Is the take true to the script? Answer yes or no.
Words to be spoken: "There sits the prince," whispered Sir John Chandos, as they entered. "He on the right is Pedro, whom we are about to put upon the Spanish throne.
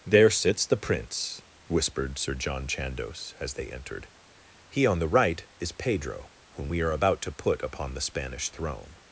yes